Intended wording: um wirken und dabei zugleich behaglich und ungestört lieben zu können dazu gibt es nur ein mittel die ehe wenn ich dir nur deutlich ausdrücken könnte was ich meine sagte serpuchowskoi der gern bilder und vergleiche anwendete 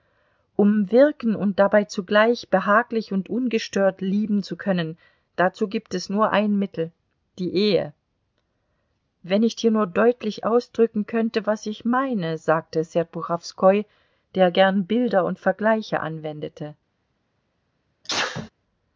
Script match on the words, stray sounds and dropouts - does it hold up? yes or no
no